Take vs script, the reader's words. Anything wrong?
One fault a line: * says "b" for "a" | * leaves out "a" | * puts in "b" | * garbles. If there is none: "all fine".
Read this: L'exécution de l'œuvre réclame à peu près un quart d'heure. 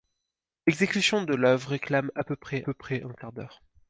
* puts in "peu près"